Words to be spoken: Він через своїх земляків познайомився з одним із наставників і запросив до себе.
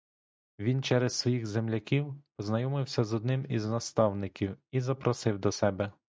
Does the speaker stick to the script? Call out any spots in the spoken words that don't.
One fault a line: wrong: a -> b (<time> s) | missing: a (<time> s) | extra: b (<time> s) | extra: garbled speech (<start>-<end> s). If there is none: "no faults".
no faults